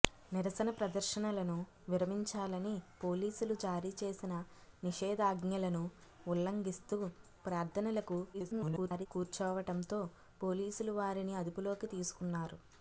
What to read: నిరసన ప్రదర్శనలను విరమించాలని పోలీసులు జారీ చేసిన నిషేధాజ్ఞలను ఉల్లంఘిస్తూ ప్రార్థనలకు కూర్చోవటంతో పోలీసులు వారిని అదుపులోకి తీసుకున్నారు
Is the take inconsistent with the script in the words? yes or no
yes